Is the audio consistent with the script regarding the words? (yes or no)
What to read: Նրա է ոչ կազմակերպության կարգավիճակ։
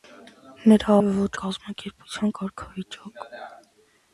yes